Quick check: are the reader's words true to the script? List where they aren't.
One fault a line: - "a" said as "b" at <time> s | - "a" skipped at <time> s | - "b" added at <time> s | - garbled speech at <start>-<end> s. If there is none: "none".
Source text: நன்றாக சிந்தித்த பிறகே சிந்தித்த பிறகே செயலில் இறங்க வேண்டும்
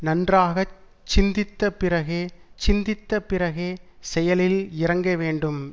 none